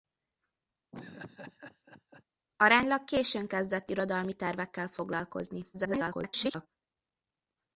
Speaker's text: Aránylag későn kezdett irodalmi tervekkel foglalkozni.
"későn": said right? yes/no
yes